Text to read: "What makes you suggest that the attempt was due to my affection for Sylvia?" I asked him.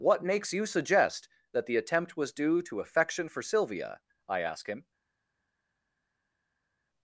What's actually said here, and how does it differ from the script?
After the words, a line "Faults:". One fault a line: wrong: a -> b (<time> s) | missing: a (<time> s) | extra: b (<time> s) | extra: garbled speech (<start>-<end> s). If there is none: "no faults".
"What makes you suggest that the attempt was due to affection for Sylvia?" I ask him.
Faults:
missing: my (2.8 s)
wrong: asked -> ask (4.4 s)